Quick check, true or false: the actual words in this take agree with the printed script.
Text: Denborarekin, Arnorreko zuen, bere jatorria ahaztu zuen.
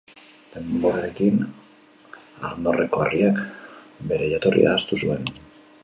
false